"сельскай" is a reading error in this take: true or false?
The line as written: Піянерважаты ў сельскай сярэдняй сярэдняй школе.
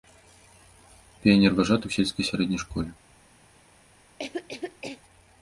false